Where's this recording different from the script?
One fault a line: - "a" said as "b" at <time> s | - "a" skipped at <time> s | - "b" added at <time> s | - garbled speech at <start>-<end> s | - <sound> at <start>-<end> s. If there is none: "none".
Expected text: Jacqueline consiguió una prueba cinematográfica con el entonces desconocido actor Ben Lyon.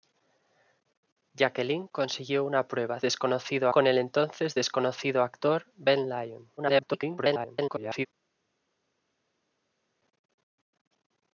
- "cinematográfica" said as "desconocido" at 3.0 s
- garbled speech at 6.6-8.1 s